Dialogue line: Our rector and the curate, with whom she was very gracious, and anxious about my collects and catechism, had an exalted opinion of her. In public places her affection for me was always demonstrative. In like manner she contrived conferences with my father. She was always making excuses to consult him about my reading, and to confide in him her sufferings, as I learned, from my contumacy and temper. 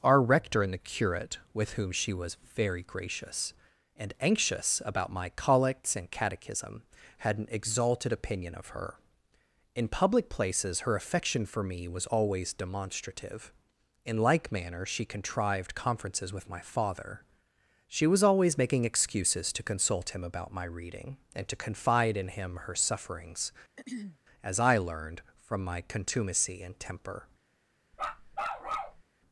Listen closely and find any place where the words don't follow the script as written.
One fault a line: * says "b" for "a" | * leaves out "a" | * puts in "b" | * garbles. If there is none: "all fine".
all fine